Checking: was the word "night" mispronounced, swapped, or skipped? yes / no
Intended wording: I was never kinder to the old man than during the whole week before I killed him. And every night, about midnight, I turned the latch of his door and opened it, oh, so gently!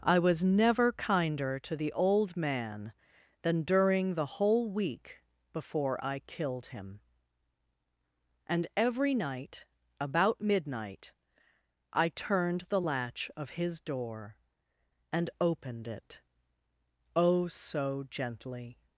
no